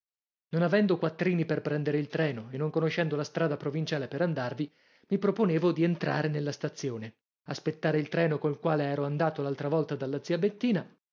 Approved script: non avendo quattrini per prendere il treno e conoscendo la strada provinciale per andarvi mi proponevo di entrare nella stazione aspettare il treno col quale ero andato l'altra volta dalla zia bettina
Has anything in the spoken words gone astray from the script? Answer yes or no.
yes